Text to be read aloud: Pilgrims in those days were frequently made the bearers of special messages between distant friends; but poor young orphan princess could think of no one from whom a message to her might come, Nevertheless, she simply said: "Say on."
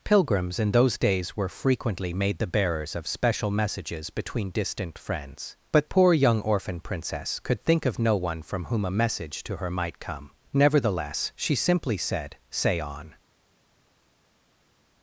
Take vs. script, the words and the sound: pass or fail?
pass